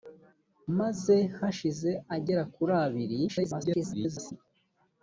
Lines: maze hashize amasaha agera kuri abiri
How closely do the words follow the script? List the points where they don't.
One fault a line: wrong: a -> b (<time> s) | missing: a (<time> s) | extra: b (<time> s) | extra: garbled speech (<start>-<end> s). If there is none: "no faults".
missing: amasaha (1.9 s)
extra: garbled speech (3.3-4.3 s)